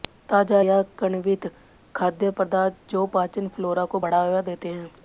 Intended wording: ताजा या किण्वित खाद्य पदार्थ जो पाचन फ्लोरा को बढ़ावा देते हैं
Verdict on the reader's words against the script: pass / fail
pass